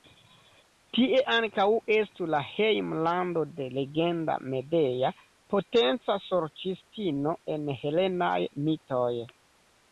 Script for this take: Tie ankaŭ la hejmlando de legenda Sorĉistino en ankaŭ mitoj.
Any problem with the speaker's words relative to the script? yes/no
yes